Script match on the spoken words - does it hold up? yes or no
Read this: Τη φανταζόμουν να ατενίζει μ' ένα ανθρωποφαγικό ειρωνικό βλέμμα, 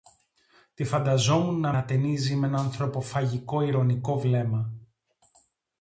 yes